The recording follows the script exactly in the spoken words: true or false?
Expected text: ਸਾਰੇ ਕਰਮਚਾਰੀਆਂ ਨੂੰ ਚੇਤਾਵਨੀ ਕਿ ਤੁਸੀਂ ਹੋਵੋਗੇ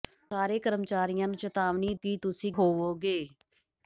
true